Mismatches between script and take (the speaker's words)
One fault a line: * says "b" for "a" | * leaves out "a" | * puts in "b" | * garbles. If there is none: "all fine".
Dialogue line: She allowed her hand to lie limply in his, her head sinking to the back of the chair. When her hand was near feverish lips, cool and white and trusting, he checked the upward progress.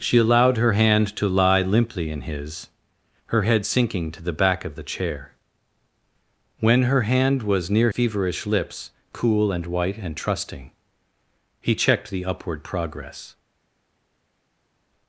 all fine